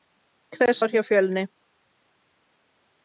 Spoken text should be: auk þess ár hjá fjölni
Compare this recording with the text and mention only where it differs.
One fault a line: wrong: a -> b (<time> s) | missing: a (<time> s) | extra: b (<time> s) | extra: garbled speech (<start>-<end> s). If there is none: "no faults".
no faults